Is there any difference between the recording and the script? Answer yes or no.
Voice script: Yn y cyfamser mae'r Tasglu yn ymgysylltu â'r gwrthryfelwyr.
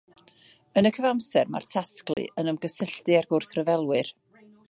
no